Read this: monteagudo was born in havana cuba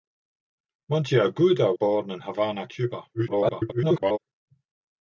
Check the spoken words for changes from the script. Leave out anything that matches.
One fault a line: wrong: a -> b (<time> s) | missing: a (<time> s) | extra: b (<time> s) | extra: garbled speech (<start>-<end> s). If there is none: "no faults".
missing: was (1.8 s)
extra: garbled speech (3.1-4.2 s)